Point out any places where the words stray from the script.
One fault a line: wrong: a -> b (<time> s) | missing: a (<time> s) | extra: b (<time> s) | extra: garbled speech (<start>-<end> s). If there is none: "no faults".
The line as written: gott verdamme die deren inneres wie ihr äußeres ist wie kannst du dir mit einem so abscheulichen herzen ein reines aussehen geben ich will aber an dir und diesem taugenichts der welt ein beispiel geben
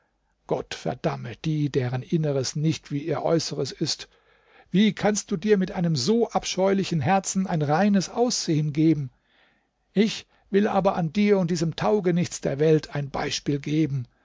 extra: nicht (2.5 s)